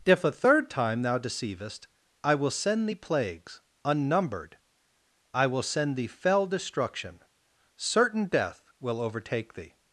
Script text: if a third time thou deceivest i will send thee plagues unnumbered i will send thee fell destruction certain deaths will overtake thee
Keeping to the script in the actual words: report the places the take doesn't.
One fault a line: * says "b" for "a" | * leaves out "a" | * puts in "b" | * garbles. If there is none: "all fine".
* says "death" for "deaths"